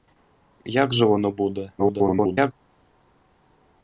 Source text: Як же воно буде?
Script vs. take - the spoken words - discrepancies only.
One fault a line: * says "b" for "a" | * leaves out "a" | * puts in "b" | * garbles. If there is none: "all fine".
* garbles